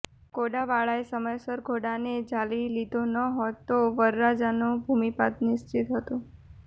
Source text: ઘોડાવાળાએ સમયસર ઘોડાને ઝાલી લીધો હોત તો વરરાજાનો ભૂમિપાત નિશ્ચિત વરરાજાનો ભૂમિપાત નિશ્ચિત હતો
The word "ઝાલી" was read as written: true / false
true